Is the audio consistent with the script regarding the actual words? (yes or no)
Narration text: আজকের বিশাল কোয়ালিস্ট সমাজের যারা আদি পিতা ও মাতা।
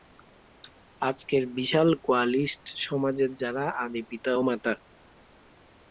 yes